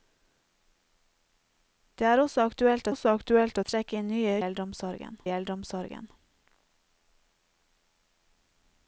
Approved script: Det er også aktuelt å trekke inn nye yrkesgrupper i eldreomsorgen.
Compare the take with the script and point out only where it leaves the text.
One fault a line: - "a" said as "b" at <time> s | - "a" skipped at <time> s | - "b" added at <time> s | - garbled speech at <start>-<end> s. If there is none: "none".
- "også aktuelt" added at 2.9 s
- "yrkesgrupper" said as "eldreomsorgen" at 4.4 s